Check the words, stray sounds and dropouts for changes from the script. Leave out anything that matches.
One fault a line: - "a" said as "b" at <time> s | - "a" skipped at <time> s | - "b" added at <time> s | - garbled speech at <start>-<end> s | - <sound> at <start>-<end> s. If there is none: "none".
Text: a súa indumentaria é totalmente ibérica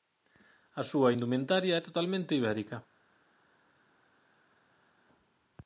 none